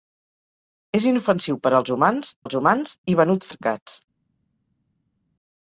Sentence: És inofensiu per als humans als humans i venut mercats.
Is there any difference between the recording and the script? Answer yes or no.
no